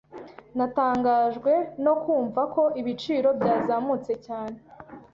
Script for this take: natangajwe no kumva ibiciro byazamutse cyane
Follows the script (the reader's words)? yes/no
no